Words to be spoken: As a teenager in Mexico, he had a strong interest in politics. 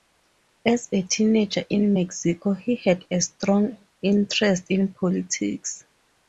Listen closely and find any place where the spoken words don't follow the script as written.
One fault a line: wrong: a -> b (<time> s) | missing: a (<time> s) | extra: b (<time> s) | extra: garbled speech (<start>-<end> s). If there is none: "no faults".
no faults